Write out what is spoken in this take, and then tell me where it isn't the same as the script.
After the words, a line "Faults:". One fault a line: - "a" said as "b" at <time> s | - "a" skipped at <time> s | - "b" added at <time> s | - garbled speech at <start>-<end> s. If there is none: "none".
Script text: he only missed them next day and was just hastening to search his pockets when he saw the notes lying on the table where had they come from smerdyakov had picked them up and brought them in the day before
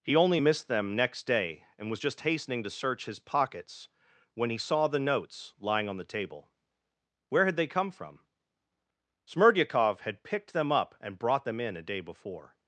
he only missed them next day and was just hastening to search his pockets when he saw the notes lying on the table where had they come from smerdyakov had picked them up and brought them in a day before
Faults:
- "the" said as "a" at 11.8 s